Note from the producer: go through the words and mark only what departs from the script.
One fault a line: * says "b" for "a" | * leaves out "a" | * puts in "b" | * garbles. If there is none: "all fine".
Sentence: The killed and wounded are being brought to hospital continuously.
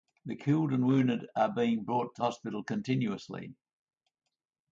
all fine